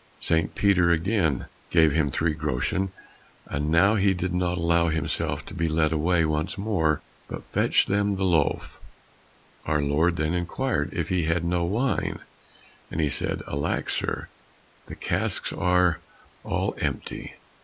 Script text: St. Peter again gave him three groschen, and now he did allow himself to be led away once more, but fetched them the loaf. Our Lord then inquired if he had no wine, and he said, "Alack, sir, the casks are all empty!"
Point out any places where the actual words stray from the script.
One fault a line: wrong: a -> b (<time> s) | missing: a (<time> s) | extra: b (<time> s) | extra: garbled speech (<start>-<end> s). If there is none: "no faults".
extra: not (4.3 s)